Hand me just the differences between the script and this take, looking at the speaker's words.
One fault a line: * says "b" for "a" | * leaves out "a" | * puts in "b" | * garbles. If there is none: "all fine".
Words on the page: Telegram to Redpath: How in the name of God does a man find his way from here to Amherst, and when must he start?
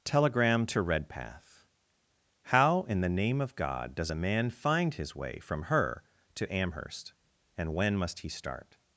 * says "her" for "here"